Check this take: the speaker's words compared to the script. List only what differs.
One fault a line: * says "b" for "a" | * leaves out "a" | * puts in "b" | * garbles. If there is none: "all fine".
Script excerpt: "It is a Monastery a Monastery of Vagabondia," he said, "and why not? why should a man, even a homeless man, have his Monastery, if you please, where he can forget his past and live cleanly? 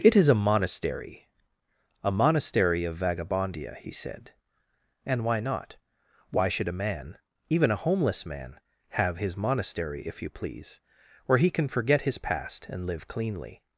all fine